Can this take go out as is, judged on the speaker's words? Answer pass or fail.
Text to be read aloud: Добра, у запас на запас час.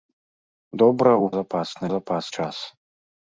pass